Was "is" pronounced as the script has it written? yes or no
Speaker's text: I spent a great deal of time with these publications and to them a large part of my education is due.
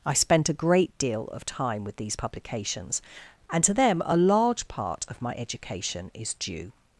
yes